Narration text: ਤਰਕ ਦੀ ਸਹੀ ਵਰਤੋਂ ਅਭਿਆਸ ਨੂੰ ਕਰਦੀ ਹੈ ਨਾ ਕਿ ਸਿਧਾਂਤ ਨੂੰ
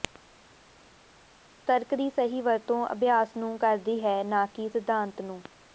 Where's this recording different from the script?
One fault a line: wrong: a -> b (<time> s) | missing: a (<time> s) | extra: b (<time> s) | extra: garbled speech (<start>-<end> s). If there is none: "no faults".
no faults